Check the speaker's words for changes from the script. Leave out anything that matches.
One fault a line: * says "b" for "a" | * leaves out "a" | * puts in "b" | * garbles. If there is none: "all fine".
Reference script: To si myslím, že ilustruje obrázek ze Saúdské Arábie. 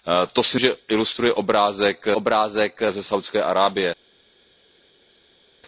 * leaves out "myslím"
* puts in "obrázek"